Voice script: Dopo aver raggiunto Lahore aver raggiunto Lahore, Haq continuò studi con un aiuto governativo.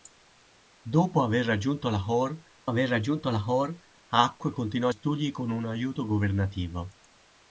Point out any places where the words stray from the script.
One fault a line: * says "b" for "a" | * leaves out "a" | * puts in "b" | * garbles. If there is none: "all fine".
all fine